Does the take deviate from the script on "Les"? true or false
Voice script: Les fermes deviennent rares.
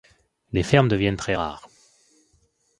false